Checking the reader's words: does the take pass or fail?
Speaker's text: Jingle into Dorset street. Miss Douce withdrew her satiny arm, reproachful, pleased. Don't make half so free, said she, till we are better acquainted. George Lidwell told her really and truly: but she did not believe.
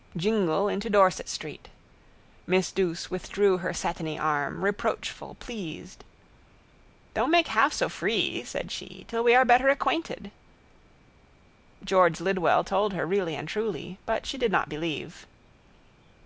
pass